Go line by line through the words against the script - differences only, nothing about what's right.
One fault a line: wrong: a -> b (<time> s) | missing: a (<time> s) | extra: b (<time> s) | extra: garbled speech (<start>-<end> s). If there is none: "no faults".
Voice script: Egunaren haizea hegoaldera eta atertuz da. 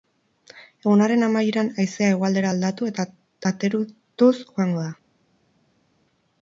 extra: amaieran (1.2 s)
extra: aldatu (2.5 s)
extra: joango (4.4 s)